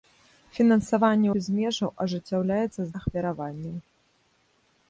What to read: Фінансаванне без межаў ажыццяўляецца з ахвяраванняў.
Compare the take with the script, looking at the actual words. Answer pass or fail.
pass